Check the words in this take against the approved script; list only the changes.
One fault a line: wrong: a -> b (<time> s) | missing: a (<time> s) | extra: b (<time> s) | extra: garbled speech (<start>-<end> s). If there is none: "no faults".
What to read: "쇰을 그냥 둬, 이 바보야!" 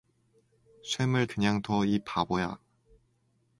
no faults